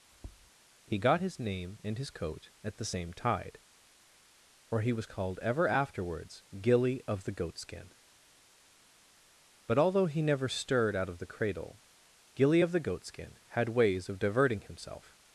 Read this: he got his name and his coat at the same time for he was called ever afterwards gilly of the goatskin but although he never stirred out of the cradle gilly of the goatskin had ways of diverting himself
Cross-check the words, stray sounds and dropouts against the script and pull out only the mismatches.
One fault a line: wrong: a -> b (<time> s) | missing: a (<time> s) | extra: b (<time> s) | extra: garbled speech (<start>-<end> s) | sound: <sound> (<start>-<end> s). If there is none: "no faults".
sound: tap (0.1-0.5 s)
wrong: time -> tide (3.1 s)